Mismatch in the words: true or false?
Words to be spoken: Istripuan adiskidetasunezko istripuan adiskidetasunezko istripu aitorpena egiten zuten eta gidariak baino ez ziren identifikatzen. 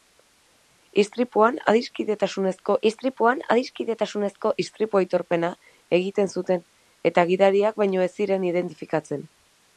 false